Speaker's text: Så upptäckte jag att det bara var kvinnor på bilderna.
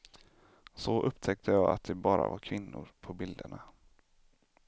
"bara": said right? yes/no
yes